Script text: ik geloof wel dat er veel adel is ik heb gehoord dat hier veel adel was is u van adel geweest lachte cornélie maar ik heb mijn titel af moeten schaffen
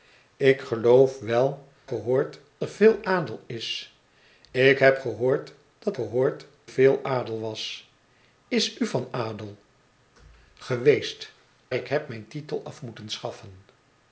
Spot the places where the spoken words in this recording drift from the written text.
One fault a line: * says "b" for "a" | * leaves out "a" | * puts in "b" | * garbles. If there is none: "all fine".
* says "gehoord" for "dat"
* says "gehoord" for "hier"
* leaves out "lachte cornélie maar"